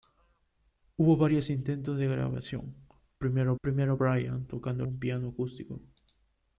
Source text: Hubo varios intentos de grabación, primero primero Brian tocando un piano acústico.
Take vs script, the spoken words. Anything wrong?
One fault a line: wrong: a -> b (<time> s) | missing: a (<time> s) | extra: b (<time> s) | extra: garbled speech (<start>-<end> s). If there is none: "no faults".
no faults